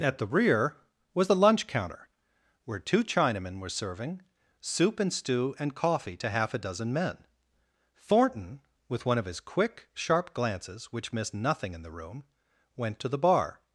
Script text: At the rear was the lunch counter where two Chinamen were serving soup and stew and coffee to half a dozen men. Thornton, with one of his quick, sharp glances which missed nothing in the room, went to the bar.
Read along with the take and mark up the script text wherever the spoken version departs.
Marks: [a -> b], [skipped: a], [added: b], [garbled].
At the rear was the lunch counter where two Chinamen were serving soup and stew and coffee to half a dozen men. Thornton, with one of his quick, sharp glances which missed nothing in the room, went to the bar.